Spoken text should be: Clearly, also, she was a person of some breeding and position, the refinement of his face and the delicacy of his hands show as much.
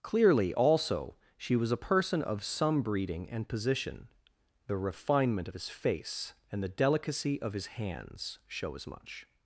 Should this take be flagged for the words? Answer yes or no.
no